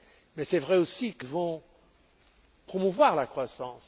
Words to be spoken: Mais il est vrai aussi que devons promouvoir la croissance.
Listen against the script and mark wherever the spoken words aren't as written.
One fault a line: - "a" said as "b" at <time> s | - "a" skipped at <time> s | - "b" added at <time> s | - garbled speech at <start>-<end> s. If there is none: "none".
none